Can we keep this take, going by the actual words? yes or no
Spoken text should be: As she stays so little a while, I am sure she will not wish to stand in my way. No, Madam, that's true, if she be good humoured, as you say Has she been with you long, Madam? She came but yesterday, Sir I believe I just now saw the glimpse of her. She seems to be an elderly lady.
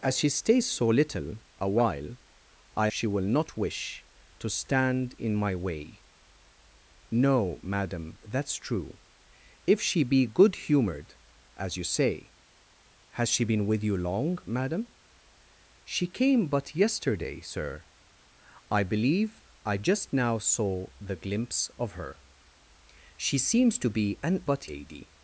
no